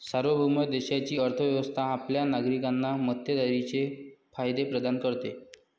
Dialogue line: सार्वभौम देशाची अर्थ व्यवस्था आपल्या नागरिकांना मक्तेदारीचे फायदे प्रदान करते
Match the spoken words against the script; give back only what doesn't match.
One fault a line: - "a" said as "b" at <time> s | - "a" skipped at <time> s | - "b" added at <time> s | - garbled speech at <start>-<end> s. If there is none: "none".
none